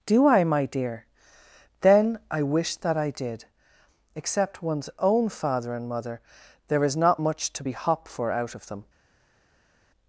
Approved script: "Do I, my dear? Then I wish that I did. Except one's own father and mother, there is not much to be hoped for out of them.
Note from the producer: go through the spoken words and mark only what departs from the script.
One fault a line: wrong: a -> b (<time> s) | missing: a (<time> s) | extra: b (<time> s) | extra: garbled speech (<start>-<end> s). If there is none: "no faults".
wrong: hoped -> hop (7.7 s)